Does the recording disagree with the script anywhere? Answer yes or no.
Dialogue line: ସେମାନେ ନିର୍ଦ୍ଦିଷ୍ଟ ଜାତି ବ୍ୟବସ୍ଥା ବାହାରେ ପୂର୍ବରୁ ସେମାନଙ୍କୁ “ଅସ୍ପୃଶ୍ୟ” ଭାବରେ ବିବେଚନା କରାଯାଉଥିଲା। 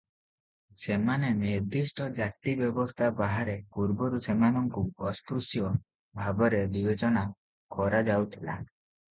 no